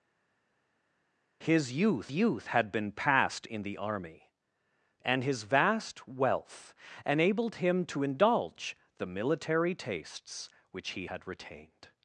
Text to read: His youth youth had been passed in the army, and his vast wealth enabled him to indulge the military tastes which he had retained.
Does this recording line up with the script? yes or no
yes